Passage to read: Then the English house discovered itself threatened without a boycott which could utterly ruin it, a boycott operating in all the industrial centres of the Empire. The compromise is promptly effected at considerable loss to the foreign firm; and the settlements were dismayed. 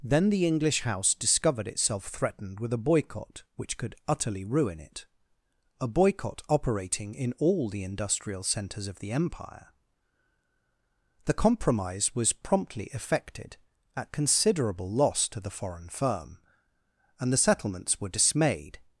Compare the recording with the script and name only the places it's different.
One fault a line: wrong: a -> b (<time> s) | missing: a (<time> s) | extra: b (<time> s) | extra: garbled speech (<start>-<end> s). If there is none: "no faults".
wrong: without -> with (2.6 s)
wrong: is -> was (12.2 s)